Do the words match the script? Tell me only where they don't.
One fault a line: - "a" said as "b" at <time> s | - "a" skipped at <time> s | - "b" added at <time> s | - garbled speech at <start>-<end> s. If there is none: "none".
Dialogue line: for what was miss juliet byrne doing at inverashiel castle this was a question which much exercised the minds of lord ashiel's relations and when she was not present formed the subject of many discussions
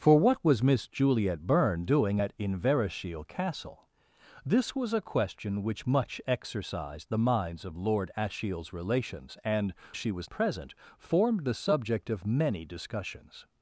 - "when" skipped at 9.7 s
- "not" skipped at 10.3 s